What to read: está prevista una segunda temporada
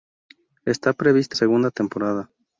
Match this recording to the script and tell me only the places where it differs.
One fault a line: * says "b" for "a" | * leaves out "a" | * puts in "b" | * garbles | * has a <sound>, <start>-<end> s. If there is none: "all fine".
* leaves out "una"